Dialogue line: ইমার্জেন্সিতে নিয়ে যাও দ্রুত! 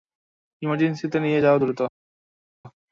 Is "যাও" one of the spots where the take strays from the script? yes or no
no